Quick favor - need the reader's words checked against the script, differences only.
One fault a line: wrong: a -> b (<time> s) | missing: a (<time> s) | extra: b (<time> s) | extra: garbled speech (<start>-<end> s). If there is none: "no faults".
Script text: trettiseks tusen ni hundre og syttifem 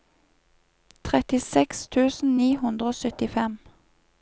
no faults